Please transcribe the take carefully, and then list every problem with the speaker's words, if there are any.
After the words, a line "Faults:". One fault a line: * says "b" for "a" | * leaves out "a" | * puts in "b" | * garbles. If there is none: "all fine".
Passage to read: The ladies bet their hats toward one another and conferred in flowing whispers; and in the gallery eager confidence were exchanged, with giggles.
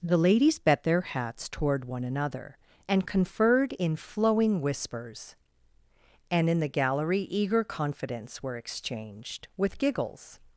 The ladies bet their hats toward one another and conferred in flowing whispers; and in the gallery eager confidence were exchanged, with giggles.
Faults:
all fine